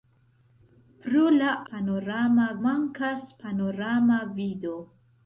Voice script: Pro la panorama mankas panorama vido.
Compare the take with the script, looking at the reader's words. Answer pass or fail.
pass